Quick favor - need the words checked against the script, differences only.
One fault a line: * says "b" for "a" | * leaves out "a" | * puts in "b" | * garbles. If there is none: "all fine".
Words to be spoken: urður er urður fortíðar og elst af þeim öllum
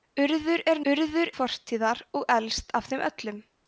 all fine